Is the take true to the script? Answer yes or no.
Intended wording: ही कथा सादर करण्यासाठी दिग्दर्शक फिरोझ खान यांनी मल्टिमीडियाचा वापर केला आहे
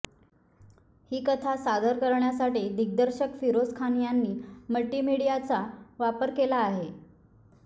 yes